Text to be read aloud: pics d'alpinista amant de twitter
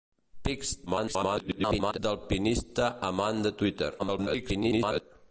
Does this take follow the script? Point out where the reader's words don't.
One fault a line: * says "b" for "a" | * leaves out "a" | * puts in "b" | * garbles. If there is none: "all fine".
* garbles
* garbles